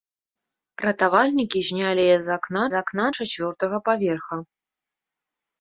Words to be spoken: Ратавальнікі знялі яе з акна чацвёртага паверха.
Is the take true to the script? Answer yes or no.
no